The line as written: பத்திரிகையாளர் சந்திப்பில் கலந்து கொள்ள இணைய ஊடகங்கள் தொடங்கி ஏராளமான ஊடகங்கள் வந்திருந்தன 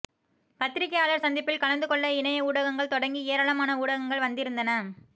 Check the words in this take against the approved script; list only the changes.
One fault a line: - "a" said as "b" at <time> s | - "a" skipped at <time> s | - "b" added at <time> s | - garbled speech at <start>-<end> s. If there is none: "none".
none